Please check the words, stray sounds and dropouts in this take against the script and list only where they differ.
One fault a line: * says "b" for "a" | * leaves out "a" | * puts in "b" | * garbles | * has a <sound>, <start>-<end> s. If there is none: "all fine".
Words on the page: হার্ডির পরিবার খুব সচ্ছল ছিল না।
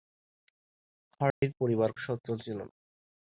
* has a dropout, 1.3-1.4 s
* leaves out "খুব"